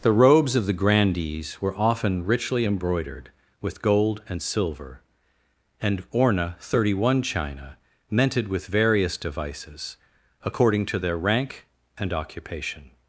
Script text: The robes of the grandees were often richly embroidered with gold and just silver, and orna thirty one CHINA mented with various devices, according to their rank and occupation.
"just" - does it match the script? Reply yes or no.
no